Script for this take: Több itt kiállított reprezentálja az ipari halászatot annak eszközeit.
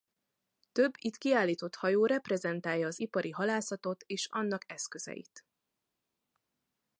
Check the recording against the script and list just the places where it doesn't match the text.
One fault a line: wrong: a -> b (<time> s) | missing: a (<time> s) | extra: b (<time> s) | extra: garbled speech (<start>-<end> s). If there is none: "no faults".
extra: hajó (1.8 s)
extra: és (4.1 s)